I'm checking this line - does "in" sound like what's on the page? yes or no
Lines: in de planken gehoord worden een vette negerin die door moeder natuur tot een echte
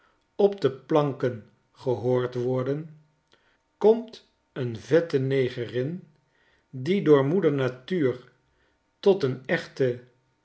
no